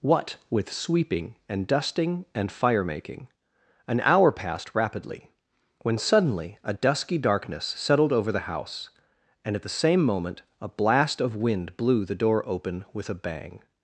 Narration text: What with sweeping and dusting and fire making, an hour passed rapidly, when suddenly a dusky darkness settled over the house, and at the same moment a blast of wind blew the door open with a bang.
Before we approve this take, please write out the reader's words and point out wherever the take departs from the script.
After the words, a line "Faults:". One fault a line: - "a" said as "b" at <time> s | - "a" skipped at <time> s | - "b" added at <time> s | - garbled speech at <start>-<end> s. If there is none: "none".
What with sweeping and dusting and fire making, an hour passed rapidly, when suddenly a dusky darkness settled over the house, and at the same moment a blast of wind blew the door open with a bang.
Faults:
none